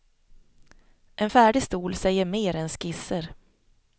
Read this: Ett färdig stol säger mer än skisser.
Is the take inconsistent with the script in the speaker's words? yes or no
yes